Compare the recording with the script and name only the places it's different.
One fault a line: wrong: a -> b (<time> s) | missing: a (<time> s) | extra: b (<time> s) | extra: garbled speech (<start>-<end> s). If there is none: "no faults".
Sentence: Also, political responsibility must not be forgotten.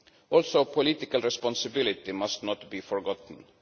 no faults